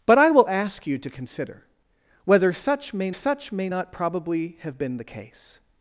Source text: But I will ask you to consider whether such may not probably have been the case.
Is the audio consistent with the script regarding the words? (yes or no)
no